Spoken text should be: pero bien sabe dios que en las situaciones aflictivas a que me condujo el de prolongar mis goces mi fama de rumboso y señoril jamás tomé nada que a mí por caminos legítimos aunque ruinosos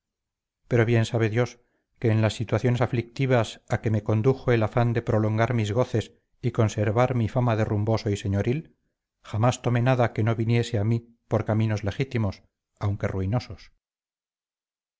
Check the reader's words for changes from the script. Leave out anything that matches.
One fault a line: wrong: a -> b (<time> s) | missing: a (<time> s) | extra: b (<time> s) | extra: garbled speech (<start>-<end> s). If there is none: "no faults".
extra: afán (4.6 s)
extra: y conservar (6.4 s)
extra: no viniese (10.2 s)